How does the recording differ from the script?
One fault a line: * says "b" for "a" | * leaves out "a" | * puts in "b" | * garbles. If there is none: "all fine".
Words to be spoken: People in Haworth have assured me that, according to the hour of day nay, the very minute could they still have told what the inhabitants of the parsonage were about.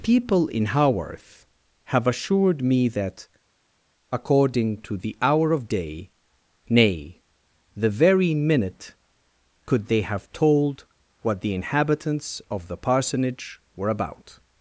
* leaves out "still"